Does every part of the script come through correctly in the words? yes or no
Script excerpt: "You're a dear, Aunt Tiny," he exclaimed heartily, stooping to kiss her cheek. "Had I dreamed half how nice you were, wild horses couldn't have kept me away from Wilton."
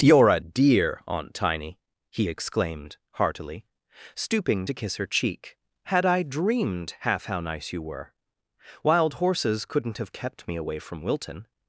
yes